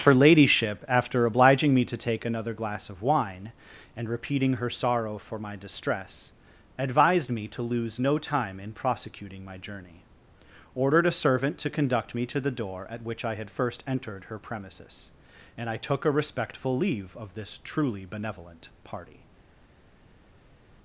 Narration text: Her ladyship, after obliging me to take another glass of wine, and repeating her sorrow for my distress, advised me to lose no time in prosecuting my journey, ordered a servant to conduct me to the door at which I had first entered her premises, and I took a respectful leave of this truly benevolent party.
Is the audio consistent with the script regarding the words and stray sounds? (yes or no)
yes